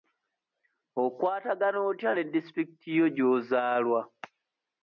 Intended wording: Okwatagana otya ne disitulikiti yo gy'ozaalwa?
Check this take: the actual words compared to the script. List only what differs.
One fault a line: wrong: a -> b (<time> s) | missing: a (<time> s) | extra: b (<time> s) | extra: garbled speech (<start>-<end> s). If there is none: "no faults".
no faults